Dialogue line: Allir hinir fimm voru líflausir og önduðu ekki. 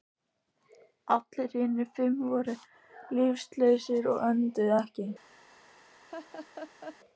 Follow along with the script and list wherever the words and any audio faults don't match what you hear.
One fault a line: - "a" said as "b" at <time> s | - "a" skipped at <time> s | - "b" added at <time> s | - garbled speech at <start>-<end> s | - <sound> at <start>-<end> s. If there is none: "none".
- laugh at 6.1-7.0 s